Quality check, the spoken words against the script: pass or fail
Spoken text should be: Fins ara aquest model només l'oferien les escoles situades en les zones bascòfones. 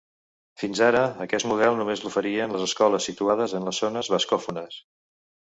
pass